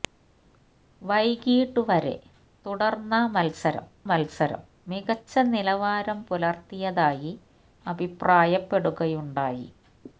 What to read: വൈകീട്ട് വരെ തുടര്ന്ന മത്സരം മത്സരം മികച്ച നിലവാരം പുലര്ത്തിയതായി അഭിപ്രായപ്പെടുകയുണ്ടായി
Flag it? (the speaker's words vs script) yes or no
no